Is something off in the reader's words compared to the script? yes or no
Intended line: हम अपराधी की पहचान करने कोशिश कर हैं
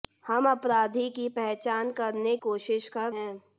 no